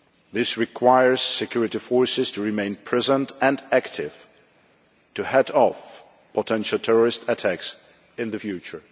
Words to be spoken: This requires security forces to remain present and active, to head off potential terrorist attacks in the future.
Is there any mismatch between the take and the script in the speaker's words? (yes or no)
no